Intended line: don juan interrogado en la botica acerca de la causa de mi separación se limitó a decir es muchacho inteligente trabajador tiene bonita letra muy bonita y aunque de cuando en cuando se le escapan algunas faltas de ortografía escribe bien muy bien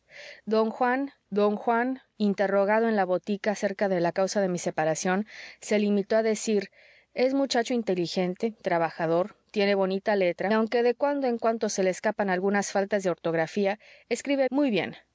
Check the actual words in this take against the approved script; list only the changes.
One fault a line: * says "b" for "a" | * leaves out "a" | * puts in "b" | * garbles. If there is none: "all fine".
* puts in "don juan"
* leaves out "muy bonita y"
* leaves out "bien"